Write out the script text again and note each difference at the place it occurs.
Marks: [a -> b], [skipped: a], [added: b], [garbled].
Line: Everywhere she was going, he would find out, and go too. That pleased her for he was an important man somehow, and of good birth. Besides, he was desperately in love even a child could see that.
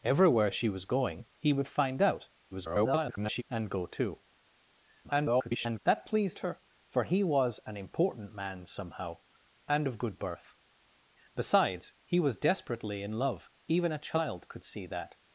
Everywhere she was going, he would find out, [garbled] and go too. [garbled] That pleased her for he was an important man somehow, and of good birth. Besides, he was desperately in love even a child could see that.